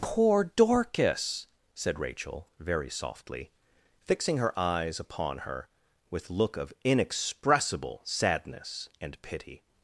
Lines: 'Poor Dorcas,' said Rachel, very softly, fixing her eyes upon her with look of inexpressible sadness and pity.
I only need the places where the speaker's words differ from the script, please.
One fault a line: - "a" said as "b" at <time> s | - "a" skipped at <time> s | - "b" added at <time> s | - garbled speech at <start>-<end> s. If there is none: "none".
none